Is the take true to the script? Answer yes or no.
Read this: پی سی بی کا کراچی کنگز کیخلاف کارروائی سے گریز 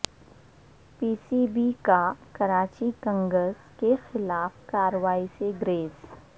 yes